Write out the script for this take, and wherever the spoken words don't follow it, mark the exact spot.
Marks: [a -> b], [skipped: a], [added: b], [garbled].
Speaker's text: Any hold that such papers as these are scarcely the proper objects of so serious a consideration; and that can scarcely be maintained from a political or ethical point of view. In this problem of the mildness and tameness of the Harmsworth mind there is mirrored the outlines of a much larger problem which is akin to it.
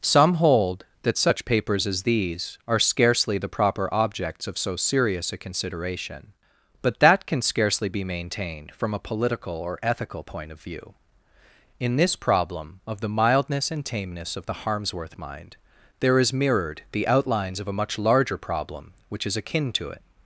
[Any -> Some] hold that such papers as these are scarcely the proper objects of so serious a consideration; [and -> but] that can scarcely be maintained from a political or ethical point of view. In this problem of the mildness and tameness of the Harmsworth mind there is mirrored the outlines of a much larger problem which is akin to it.